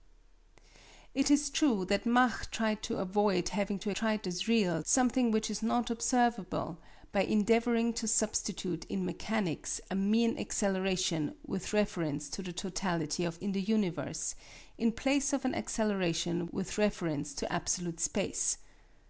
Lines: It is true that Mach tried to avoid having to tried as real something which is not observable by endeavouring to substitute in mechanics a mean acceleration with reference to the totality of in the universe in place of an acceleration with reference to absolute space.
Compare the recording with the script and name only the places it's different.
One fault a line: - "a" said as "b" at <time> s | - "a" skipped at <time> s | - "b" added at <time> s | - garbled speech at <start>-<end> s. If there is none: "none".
none